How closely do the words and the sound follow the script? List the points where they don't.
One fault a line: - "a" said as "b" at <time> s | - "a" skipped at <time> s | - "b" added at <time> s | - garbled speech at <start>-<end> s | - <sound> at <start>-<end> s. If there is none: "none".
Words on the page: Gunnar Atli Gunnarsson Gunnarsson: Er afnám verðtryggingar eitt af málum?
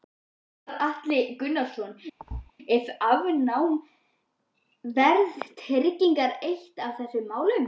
- "Gunnarsson" skipped at 1.9 s
- thud at 2.2-2.5 s
- "þessum" added at 7.0 s